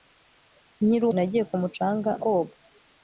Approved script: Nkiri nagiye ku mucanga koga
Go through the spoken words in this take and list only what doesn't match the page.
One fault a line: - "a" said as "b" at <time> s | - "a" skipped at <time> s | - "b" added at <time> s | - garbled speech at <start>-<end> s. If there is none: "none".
none